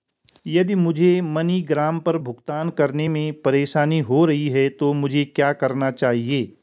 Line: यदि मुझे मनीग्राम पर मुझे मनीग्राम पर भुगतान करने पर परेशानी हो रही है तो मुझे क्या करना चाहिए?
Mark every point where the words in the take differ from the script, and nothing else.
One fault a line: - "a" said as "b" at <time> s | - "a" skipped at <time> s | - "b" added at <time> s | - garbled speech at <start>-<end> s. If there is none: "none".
- "मुझे मनीग्राम पर" skipped at 2.2 s
- "पर" said as "में" at 3.1 s